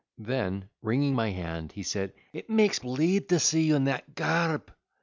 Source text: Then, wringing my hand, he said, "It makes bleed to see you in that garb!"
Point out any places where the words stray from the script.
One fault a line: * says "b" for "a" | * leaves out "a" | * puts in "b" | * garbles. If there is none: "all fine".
all fine